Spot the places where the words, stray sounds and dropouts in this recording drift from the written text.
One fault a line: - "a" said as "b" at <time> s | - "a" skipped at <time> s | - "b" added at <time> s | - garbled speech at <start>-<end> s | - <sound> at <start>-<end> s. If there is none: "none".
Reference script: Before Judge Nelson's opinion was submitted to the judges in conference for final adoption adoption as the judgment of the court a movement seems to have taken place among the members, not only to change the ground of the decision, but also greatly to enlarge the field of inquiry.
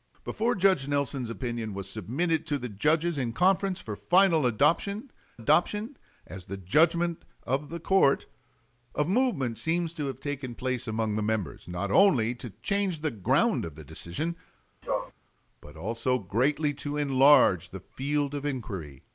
- sneeze at 14.8-15.1 s